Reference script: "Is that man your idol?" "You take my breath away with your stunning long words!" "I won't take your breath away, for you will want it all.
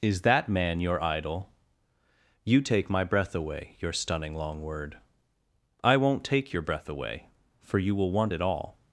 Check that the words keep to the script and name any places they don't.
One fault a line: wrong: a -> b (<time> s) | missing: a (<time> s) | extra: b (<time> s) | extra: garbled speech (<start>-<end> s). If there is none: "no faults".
missing: with (3.8 s)
wrong: words -> word (4.6 s)